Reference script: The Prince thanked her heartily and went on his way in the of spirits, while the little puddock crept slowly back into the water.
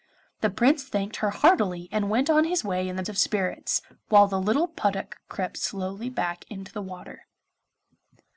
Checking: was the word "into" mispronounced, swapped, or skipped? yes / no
no